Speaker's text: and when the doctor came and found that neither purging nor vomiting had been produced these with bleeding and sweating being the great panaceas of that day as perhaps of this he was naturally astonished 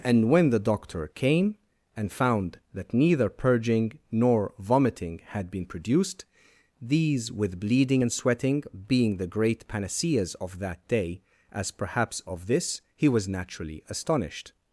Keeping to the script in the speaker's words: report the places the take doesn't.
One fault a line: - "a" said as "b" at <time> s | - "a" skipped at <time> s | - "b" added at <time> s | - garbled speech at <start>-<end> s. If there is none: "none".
none